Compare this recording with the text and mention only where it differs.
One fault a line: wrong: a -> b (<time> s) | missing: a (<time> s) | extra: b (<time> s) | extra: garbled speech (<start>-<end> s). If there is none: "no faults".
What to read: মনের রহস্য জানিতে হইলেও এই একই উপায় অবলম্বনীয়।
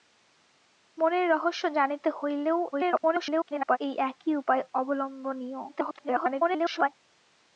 extra: garbled speech (2.7-3.8 s)
extra: garbled speech (5.7-6.9 s)